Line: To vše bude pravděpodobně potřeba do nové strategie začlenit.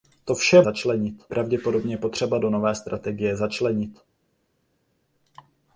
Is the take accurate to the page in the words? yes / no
no